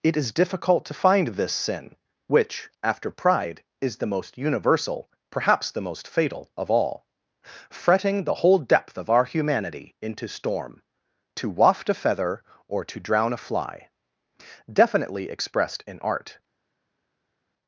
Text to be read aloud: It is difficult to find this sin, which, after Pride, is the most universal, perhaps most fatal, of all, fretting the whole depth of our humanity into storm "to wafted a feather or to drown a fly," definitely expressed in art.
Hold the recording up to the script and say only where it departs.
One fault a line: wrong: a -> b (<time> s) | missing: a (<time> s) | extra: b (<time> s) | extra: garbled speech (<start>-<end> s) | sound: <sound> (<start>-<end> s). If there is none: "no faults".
extra: the (5.7 s)
wrong: wafted -> waft (11.5 s)